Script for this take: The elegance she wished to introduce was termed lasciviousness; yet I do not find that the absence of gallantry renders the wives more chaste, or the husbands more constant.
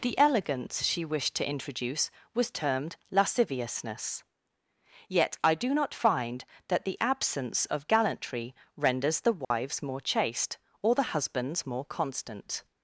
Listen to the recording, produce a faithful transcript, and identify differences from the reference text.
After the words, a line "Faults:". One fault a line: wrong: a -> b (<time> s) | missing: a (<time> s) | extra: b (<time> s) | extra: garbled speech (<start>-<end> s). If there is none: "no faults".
The elegance she wished to introduce was termed lasciviousness; yet I do not find that the absence of gallantry renders the wives more chaste, or the husbands more constant.
Faults:
no faults